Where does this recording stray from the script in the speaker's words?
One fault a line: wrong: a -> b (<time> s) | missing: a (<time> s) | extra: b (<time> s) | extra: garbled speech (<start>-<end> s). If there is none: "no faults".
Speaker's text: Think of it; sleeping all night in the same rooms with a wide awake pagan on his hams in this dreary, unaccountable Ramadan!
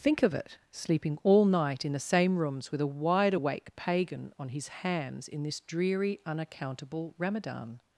no faults